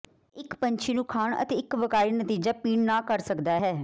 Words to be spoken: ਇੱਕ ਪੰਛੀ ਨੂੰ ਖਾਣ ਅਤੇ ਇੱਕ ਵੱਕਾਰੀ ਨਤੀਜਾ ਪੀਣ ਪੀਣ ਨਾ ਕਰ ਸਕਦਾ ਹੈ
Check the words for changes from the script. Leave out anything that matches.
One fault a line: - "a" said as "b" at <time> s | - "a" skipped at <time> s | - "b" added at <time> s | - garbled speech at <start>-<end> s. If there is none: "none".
- "ਪੀਣ" skipped at 2.9 s